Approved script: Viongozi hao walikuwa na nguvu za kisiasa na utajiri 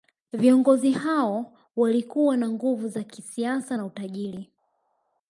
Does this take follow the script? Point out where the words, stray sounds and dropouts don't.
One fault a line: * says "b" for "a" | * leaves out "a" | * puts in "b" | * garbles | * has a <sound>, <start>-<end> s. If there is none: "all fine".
all fine